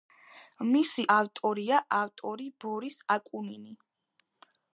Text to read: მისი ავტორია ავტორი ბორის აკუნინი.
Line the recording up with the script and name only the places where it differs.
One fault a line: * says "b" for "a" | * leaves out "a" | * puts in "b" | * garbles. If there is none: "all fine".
all fine